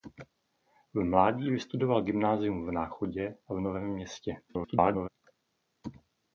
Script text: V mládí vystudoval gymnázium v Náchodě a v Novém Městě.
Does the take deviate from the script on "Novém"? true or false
false